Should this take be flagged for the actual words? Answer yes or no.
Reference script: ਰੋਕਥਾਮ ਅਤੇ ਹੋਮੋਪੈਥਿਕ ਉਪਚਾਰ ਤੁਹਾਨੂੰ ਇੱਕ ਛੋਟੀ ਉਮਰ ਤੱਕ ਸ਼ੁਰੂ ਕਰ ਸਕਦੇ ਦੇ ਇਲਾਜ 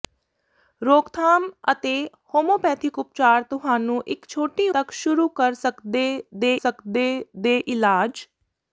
yes